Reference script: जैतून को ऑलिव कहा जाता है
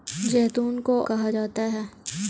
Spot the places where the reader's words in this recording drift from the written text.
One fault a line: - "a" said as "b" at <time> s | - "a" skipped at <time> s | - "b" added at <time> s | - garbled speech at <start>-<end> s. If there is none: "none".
- "ऑलिव" skipped at 1.0 s